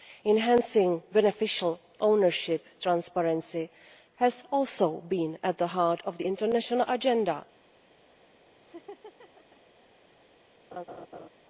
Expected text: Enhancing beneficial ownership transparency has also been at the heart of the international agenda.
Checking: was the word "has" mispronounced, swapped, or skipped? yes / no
no